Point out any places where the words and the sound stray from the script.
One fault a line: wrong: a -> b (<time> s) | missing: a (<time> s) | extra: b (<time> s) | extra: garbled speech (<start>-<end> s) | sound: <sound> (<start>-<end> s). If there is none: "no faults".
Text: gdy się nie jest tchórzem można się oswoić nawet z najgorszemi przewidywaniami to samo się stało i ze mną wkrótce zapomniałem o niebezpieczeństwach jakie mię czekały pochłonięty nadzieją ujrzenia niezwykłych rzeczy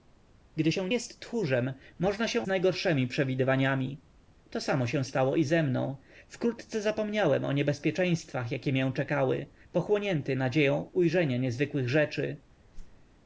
missing: nie (0.9 s)
missing: oswoić nawet (2.5 s)
sound: whoosh (12.7-13.1 s)